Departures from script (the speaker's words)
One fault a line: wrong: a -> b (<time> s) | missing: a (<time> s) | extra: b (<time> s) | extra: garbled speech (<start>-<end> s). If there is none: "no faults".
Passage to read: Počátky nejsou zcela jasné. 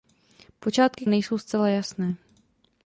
no faults